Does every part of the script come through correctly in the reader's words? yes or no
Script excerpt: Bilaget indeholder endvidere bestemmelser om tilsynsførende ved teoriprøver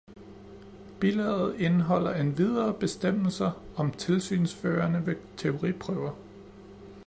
yes